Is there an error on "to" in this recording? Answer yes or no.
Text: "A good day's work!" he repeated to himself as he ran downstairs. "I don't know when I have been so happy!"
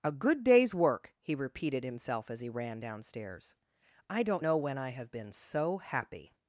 yes